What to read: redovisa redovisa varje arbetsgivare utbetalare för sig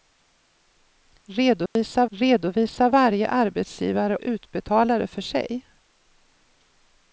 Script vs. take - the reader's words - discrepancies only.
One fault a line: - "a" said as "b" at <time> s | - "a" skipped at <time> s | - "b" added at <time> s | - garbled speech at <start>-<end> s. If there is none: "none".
none